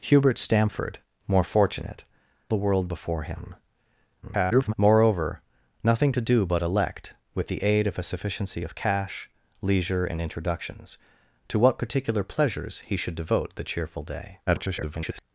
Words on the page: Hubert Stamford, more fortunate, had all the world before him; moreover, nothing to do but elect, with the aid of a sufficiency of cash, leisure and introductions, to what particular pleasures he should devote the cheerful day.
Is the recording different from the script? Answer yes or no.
yes